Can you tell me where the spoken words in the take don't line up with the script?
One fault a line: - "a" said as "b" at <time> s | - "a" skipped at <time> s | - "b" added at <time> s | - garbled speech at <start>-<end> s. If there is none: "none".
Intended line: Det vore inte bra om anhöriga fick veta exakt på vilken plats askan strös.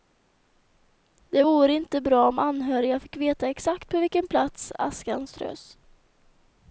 none